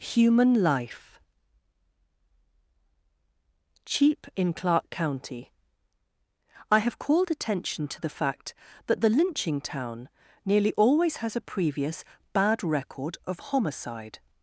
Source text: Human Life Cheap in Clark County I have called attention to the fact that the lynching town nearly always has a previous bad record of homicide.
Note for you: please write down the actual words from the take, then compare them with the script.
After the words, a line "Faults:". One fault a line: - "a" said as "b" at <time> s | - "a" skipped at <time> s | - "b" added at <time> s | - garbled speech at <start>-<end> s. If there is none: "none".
Human Life Cheap in Clark County I have called attention to the fact that the lynching town nearly always has a previous bad record of homicide.
Faults:
none